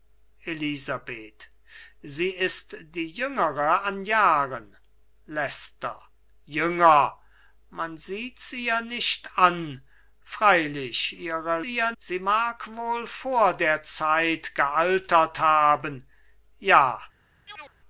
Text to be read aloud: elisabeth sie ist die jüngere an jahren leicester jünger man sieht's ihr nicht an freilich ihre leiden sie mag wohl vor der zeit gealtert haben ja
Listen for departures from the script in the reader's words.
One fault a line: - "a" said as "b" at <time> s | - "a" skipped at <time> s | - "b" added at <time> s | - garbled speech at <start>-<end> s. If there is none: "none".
- "leiden" said as "ihr" at 11.6 s